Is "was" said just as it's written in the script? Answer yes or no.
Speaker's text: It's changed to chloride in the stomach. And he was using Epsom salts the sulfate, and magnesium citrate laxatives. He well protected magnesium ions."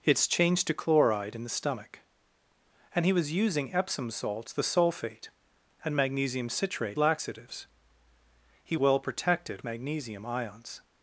yes